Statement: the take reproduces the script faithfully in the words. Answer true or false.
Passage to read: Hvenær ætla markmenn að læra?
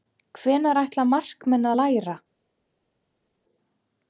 true